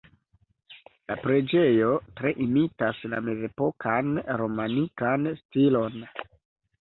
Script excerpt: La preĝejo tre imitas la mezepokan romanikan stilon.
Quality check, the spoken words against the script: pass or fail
pass